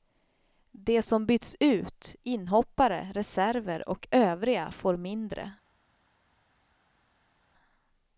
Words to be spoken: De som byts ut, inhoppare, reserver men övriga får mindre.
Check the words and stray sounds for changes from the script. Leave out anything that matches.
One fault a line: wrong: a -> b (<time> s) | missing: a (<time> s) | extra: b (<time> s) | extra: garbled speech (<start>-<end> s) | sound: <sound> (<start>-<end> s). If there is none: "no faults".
wrong: men -> och (3.9 s)